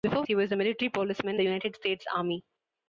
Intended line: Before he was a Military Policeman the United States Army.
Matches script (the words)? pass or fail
pass